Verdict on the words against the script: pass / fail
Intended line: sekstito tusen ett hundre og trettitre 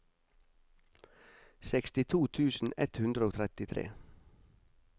pass